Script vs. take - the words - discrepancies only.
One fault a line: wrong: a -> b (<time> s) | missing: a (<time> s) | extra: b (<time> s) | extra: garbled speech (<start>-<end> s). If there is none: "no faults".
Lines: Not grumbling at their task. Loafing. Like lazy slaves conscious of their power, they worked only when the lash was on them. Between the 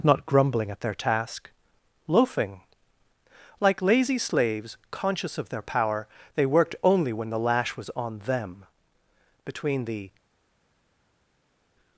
no faults